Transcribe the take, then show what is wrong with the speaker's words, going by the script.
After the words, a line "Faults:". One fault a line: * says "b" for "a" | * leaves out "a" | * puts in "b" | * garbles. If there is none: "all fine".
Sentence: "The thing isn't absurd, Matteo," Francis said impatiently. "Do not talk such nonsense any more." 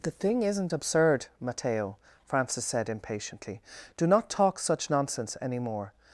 "The thing isn't absurd, Matteo," Francis said impatiently. "Do not talk such nonsense any more."
Faults:
all fine